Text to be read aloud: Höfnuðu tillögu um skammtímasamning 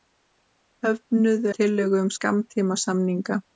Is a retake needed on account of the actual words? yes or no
no